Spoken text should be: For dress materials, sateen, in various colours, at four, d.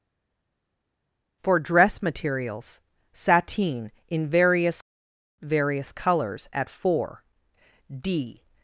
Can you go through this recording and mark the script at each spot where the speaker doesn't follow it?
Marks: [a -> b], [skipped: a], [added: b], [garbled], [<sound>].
For dress materials, sateen, in various [added: various] colours, at four, d.